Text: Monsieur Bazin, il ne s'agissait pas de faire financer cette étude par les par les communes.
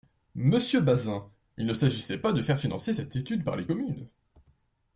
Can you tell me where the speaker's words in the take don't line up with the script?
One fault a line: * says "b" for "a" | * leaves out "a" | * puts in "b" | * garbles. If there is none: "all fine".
* leaves out "par les"